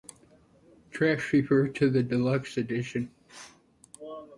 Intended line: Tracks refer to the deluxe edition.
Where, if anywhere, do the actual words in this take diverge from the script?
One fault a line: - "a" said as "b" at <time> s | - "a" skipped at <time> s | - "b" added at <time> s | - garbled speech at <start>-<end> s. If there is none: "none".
none